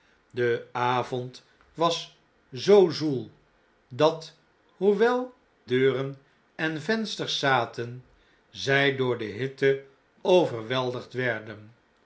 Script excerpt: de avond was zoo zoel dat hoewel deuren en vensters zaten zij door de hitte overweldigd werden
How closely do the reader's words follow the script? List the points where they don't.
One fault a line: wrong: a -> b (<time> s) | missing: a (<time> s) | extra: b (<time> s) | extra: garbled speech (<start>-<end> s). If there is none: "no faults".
no faults